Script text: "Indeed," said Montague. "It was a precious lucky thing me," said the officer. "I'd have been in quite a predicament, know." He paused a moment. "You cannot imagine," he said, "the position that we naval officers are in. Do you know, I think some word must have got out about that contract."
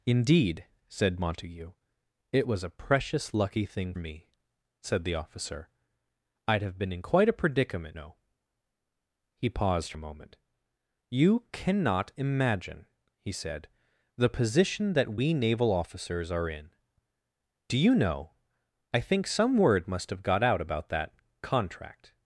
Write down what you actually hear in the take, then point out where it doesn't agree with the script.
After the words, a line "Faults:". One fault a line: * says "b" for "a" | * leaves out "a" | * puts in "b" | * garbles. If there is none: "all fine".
"Indeed," said Montague. "It was a precious lucky thing me," said the officer. "I'd have been in quite a predicament, know." He paused a moment. "You cannot imagine," he said, "the position that we naval officers are in. Do you know, I think some word must have got out about that contract."
Faults:
all fine